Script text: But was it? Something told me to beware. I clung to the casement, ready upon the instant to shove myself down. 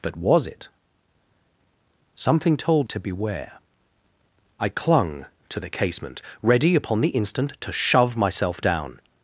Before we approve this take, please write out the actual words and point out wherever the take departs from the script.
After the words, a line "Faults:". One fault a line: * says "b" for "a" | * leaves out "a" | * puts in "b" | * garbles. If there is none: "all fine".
But was it? Something told to beware. I clung to the casement, ready upon the instant to shove myself down.
Faults:
* leaves out "me"